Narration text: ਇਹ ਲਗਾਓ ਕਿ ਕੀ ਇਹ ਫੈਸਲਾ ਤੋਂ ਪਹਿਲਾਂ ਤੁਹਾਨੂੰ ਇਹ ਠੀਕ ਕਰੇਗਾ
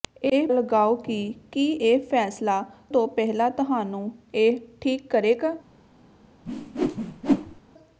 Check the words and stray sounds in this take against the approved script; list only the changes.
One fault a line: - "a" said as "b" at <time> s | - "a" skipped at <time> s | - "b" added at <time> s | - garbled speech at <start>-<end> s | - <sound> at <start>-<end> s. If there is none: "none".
- whoosh at 6.5-7.6 s